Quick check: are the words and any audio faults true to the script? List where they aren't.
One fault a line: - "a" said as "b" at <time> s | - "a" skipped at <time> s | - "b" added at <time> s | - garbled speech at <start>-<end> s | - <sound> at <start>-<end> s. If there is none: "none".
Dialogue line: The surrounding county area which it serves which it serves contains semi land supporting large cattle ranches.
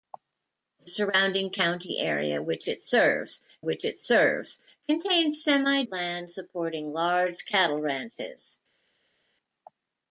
none